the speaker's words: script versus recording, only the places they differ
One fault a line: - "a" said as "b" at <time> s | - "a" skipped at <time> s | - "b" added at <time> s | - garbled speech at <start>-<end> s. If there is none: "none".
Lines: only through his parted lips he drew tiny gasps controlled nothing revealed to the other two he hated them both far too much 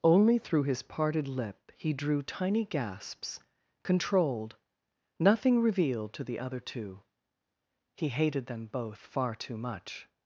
- "lips" said as "lip" at 1.3 s